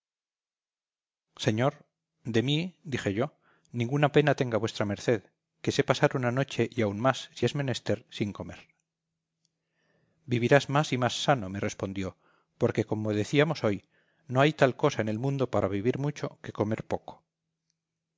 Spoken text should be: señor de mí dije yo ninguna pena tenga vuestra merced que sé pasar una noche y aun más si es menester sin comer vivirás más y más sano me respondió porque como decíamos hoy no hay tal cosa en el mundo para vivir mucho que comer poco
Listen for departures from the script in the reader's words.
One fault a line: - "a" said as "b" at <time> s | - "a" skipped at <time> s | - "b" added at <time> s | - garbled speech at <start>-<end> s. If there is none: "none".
none